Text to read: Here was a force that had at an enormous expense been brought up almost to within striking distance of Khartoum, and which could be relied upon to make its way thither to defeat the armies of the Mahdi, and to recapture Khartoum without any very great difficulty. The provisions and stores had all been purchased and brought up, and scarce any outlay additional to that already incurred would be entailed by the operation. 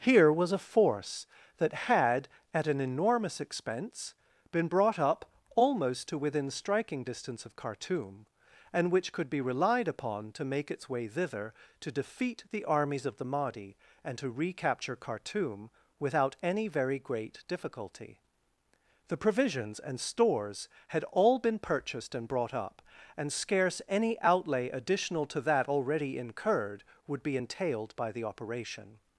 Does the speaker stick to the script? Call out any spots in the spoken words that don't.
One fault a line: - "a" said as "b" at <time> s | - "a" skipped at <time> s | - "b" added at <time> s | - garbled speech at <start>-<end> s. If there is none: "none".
none